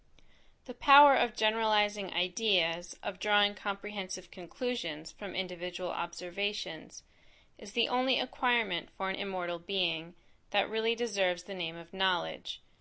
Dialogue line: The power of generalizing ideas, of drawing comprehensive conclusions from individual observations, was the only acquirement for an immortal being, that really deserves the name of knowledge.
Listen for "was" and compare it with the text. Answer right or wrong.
wrong